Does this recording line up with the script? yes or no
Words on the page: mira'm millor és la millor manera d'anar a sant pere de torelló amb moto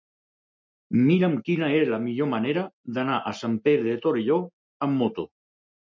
no